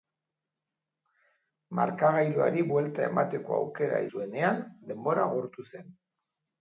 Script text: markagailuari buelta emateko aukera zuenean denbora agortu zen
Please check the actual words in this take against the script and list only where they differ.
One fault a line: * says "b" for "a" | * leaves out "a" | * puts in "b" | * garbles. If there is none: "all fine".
all fine